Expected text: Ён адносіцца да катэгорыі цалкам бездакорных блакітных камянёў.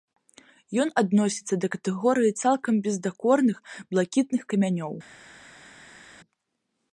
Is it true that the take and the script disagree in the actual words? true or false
false